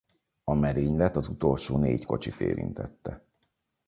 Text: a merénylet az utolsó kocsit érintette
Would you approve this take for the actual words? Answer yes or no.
no